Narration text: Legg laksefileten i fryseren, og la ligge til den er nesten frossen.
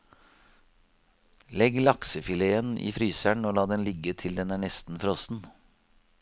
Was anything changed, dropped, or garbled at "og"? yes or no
no